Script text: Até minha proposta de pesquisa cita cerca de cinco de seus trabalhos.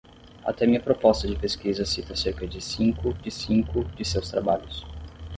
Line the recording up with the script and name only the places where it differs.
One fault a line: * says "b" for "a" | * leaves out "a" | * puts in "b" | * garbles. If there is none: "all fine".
* puts in "cinco de"